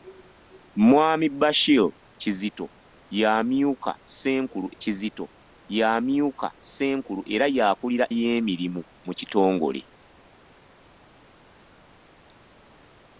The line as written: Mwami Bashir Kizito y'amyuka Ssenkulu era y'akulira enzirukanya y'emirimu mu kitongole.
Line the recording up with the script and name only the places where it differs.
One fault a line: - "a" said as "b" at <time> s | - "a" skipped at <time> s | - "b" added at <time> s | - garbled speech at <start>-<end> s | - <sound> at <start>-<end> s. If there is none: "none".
- "Kizito y'amyuka Ssenkulu" added at 4.8 s
- "enzirukanya" skipped at 8.1 s